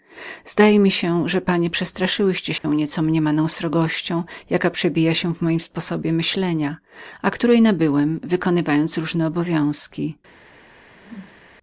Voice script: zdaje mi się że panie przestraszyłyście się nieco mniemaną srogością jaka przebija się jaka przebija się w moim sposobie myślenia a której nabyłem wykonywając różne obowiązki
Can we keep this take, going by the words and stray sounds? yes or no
no